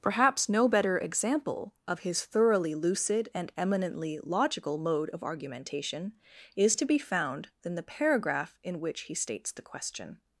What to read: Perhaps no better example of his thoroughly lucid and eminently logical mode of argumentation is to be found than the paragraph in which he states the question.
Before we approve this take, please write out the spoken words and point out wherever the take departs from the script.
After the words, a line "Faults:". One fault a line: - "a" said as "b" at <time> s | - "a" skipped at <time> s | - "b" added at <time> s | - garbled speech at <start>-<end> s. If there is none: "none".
Perhaps no better example of his thoroughly lucid and eminently logical mode of argumentation is to be found than the paragraph in which he states the question.
Faults:
none